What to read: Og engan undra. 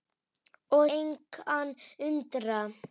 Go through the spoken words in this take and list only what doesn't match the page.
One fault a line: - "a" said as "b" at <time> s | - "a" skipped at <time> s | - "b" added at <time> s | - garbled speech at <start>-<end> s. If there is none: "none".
none